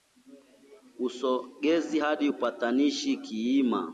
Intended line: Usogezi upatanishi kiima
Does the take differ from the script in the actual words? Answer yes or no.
yes